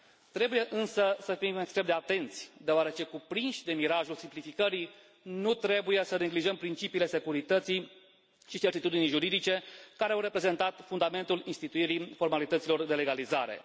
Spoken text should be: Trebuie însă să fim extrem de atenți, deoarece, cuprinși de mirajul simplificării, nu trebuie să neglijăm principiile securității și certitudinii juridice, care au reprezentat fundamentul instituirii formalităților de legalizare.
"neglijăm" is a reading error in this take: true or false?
false